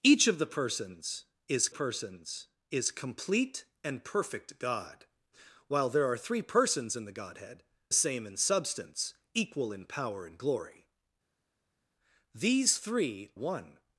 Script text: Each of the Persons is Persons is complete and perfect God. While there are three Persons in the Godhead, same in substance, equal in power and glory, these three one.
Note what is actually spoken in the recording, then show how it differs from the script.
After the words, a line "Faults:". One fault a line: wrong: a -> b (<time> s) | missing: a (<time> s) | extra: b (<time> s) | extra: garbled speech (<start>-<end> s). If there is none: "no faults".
Each of the Persons is Persons is complete and perfect God. While there are three Persons in the Godhead, same in substance, equal in power and glory, these three one.
Faults:
no faults